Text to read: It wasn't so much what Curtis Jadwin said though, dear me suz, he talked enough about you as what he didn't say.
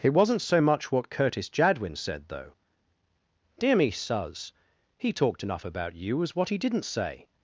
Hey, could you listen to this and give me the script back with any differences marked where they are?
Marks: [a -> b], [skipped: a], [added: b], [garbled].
It wasn't so much what Curtis Jadwin said though, dear me suz, he talked enough about you as what he didn't say.